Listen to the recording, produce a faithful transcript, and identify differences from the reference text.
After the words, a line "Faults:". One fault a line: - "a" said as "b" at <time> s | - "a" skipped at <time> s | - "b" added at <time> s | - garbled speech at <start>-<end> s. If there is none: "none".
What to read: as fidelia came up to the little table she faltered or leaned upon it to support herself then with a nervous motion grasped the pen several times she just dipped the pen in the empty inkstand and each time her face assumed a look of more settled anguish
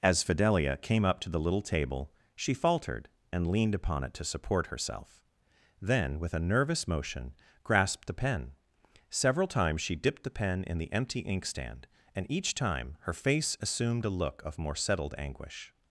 as fidelia came up to the little table she faltered and leaned upon it to support herself then with a nervous motion grasped the pen several times she dipped the pen in the empty inkstand and each time her face assumed a look of more settled anguish
Faults:
- "or" said as "and" at 3.3 s
- "just" skipped at 9.9 s